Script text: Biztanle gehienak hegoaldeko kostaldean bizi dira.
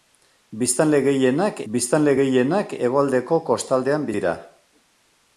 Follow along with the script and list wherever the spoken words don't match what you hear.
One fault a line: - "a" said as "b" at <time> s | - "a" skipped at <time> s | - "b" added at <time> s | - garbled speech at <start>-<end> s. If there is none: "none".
- "biztanle gehienak" added at 1.7 s
- "bizi" skipped at 4.1 s